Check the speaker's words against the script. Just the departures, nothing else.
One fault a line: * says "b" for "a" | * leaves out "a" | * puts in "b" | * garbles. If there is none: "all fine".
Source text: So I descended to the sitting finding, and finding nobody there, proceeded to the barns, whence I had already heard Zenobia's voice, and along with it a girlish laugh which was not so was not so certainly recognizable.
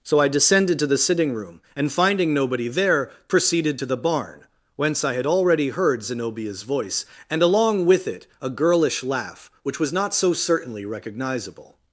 * says "room" for "finding"
* says "barn" for "barns"
* leaves out "was not so"